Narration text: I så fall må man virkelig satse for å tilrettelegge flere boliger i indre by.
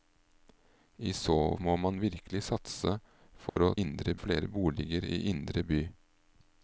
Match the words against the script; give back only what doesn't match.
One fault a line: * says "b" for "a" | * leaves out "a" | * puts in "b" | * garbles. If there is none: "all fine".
* leaves out "fall"
* says "indre" for "tilrettelegge"